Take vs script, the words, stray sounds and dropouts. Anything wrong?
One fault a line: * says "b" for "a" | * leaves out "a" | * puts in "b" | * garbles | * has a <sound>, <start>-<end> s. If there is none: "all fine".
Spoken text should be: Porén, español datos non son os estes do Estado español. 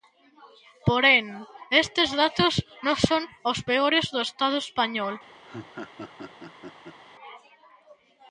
* says "estes" for "español"
* says "peores" for "estes"
* has a laugh, 5.5-7.0 s